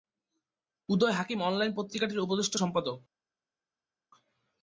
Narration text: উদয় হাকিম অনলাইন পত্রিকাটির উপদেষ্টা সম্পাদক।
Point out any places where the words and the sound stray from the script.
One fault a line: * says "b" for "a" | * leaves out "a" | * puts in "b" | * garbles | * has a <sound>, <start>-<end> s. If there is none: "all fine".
all fine